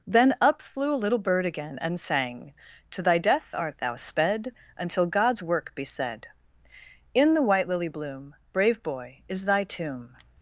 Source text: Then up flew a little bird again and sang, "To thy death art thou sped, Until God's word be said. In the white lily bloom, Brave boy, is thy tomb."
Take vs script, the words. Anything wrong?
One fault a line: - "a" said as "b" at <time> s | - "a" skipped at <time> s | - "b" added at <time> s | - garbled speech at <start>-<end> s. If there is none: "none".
- "word" said as "work" at 5.4 s